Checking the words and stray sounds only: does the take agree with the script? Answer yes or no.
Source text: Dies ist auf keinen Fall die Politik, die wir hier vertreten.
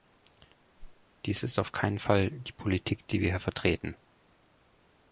no